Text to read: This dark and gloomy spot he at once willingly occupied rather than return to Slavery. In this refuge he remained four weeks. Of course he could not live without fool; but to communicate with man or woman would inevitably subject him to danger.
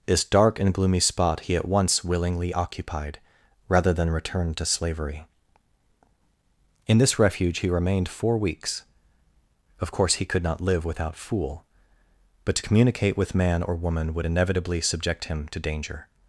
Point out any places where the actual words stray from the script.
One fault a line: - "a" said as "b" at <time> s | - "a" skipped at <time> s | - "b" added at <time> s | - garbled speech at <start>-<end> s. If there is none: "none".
none